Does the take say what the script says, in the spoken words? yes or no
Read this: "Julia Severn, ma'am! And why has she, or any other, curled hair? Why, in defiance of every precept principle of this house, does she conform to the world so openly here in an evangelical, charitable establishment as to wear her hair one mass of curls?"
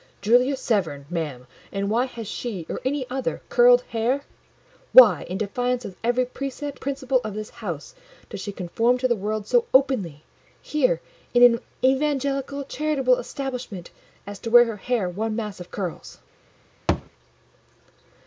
yes